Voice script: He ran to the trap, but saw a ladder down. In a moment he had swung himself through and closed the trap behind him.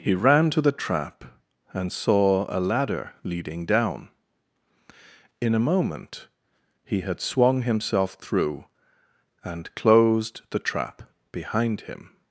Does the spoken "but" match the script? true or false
false